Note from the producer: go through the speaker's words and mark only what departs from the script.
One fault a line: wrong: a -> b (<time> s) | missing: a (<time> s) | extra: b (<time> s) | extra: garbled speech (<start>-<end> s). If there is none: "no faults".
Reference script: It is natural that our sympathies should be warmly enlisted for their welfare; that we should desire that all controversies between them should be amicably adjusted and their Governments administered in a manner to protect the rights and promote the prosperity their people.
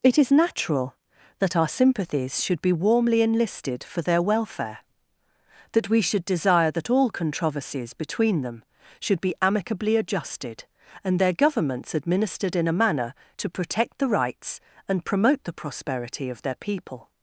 extra: of (16.3 s)